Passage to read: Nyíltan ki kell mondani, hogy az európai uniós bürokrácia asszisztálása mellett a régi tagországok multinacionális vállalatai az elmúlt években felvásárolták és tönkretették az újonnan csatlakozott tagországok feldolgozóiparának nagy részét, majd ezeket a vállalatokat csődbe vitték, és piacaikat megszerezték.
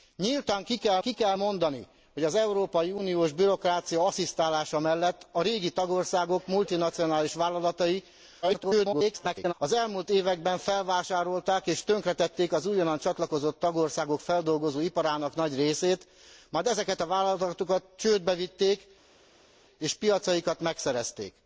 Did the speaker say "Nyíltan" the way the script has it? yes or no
yes